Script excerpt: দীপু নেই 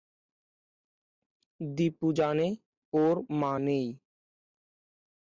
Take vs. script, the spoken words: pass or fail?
fail